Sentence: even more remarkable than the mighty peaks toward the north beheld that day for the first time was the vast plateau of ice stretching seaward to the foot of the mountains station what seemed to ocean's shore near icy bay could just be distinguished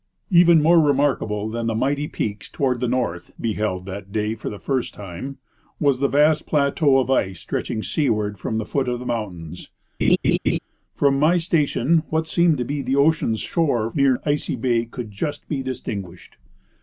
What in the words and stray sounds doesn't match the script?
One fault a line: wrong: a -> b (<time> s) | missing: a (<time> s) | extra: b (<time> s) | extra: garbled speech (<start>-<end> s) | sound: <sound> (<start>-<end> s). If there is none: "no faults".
wrong: to -> from (8.4 s)
sound: laugh (10.0-10.6 s)
extra: from my (10.9 s)
extra: be the (12.7 s)